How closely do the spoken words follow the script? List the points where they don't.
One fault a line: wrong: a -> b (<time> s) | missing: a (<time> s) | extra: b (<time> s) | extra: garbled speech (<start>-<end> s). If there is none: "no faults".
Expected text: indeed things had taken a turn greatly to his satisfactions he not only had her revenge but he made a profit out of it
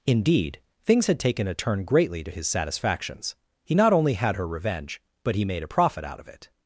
no faults